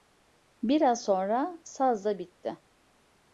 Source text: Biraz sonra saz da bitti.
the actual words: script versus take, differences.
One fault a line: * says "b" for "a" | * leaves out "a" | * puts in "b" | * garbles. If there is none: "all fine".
all fine